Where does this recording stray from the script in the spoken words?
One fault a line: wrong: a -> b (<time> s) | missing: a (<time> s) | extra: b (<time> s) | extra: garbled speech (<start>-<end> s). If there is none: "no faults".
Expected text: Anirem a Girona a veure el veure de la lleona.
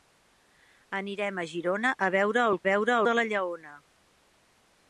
no faults